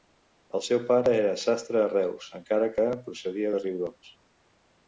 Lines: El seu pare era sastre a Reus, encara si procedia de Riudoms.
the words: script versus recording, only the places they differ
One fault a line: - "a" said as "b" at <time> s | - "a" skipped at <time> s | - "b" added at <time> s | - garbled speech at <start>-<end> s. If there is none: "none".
- "si" said as "que" at 2.8 s